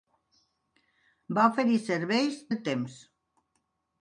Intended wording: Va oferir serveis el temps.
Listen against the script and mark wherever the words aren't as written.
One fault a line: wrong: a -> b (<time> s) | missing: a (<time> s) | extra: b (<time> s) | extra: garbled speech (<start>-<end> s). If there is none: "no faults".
no faults